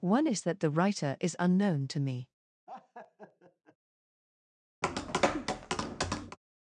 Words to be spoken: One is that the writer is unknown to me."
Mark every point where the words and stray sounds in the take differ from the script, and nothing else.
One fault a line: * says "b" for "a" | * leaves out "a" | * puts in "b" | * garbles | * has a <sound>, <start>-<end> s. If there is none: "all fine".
* has a laugh, 2.7-3.8 s
* has a tap, 4.8-6.4 s